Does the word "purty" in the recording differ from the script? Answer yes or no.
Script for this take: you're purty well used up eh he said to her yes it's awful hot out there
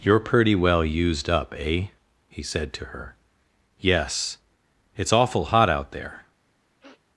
yes